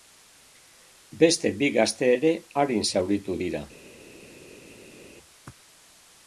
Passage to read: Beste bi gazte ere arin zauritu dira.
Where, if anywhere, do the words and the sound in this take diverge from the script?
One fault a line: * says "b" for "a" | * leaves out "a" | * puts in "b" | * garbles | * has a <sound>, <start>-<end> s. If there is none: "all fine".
all fine